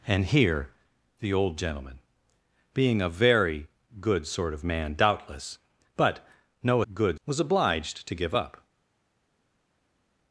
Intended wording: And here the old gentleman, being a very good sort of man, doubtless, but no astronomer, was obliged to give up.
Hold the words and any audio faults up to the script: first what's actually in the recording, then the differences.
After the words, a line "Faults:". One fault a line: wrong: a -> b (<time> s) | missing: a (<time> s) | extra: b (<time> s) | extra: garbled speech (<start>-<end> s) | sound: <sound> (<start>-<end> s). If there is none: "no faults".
And here the old gentleman, being a very good sort of man, doubtless, but no good, was obliged to give up.
Faults:
wrong: astronomer -> good (6.9 s)